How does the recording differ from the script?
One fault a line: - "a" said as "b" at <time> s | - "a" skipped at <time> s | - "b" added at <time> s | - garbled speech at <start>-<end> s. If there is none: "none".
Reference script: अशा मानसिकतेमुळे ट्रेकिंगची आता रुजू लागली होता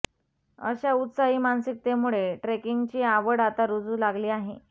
- "उत्साही" added at 0.9 s
- "आवड" added at 3.1 s
- "होता" said as "आहे" at 4.3 s